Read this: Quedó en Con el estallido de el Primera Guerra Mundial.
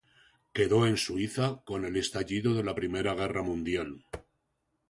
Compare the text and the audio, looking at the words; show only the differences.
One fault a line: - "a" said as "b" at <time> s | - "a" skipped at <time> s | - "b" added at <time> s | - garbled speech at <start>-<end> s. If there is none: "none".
- "Suiza" added at 1.0 s
- "el" said as "la" at 2.6 s